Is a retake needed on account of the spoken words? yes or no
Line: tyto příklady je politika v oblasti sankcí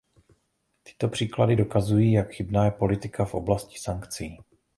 yes